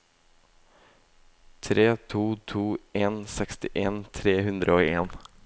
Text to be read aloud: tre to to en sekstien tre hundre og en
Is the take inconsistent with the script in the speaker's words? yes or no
no